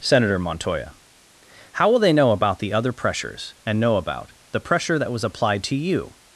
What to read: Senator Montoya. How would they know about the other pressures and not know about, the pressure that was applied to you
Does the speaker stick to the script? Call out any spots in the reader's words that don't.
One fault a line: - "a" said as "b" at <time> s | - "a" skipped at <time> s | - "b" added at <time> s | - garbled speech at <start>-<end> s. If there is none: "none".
- "would" said as "will" at 1.9 s
- "not" skipped at 3.8 s